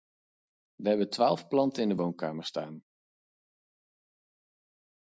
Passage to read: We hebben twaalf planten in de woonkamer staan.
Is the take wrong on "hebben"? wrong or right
right